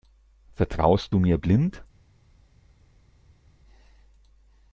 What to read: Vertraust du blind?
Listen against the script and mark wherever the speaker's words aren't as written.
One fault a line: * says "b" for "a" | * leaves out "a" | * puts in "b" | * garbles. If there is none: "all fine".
* puts in "mir"